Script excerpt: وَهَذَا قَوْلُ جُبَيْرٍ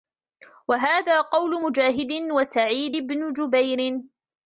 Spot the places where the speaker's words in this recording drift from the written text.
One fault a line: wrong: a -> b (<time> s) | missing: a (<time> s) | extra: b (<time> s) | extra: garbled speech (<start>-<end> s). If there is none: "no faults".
extra: مُجَاهِدٍ وَسَعِيدِ بْنِ (1.6 s)